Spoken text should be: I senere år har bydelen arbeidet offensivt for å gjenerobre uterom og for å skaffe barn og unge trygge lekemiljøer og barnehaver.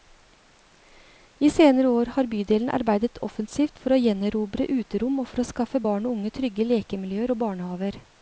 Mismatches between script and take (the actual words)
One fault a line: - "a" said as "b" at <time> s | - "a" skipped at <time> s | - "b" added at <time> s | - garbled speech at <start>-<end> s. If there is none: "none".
none